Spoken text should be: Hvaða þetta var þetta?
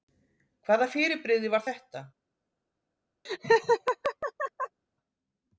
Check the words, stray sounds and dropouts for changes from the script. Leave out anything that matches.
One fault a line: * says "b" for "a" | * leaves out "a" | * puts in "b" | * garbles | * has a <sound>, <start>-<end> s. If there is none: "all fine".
* says "fyrirbrigði" for "þetta"
* has a laugh, 3.2-4.8 s